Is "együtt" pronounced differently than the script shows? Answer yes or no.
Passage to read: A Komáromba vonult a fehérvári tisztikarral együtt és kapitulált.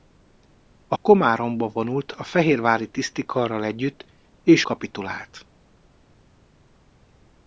no